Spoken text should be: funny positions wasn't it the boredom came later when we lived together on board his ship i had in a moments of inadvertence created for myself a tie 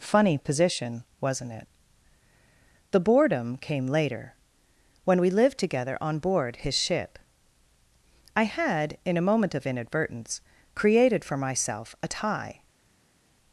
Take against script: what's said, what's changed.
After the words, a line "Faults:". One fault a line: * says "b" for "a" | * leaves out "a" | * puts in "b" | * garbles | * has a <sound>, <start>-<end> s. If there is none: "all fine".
funny position wasn't it the boredom came later when we lived together on board his ship i had in a moment of inadvertence created for myself a tie
Faults:
* says "position" for "positions"
* says "moment" for "moments"